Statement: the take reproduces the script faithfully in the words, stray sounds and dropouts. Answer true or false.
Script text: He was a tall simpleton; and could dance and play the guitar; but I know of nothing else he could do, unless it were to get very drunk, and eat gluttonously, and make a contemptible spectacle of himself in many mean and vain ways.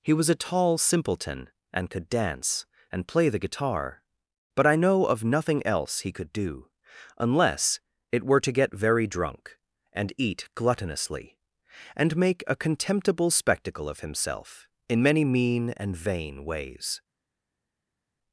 true